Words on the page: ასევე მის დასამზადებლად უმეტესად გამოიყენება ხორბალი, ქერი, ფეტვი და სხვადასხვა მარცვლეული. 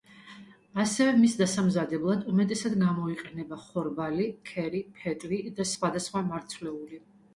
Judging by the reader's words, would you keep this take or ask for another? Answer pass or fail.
pass